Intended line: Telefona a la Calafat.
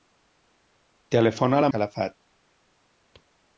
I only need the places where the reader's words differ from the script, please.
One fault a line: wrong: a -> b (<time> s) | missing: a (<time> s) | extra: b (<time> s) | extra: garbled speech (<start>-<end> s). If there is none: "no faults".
no faults